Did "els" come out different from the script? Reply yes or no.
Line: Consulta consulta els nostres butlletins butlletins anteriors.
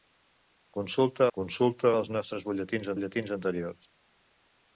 no